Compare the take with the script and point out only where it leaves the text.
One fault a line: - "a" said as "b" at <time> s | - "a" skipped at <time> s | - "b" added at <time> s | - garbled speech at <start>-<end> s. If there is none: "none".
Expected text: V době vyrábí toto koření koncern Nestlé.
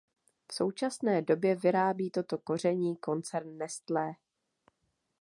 - "současné" added at 0.5 s